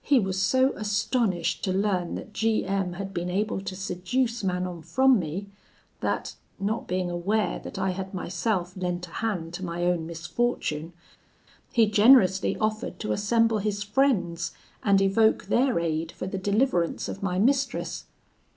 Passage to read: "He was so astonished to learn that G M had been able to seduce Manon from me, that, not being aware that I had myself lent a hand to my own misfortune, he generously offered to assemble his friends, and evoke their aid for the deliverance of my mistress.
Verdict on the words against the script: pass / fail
pass